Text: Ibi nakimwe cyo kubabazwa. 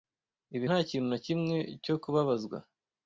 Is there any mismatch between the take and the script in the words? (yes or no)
yes